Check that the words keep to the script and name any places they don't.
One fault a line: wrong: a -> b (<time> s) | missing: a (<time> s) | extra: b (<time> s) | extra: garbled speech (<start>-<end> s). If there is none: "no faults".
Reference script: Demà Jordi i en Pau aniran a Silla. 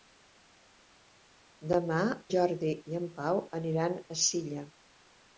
no faults